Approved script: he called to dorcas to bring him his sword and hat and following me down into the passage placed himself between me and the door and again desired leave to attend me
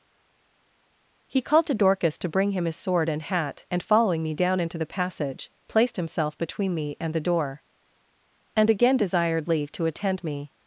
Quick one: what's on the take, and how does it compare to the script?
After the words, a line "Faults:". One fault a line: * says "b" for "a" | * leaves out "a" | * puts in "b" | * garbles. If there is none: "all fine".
he called to dorcas to bring him his sword and hat and following me down into the passage placed himself between me and the door and again desired leave to attend me
Faults:
all fine